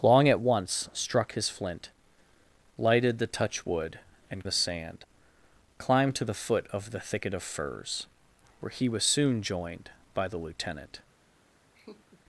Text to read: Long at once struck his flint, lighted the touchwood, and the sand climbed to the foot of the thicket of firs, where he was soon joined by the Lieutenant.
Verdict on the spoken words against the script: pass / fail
pass